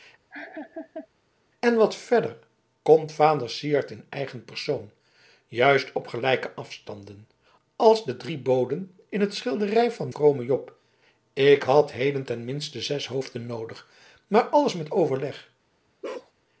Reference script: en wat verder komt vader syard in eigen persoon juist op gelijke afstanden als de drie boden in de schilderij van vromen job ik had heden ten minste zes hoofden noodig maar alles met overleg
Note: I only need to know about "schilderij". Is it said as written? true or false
true